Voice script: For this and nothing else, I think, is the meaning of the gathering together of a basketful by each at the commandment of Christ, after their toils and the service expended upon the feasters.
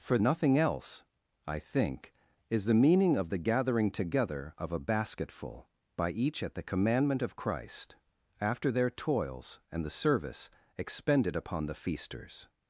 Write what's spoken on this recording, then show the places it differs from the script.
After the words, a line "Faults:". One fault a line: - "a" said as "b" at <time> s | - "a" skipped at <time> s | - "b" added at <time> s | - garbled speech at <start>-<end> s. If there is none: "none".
For nothing else, I think, is the meaning of the gathering together of a basketful by each at the commandment of Christ, after their toils and the service expended upon the feasters.
Faults:
- "this and" skipped at 0.2 s